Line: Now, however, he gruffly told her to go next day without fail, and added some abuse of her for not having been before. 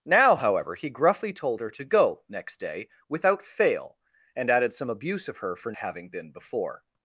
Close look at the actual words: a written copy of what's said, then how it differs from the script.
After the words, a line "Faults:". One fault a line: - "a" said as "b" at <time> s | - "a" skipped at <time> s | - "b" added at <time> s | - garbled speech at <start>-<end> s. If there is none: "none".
Now, however, he gruffly told her to go next day without fail, and added some abuse of her for having been before.
Faults:
- "not" skipped at 5.7 s